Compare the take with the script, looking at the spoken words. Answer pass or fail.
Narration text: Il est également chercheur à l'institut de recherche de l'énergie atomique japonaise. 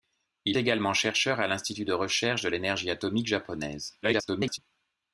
fail